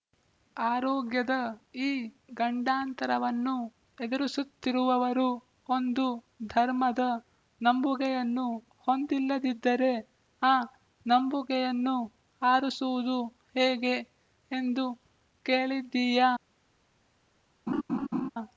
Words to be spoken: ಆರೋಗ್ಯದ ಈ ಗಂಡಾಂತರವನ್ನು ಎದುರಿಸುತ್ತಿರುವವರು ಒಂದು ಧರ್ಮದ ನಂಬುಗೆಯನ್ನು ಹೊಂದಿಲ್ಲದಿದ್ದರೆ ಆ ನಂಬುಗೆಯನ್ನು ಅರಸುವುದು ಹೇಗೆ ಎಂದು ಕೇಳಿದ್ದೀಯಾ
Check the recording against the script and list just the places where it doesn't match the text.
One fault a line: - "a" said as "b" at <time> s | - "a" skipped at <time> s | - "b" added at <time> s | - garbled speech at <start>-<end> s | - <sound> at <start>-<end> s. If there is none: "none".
- laugh at 17.7-18.3 s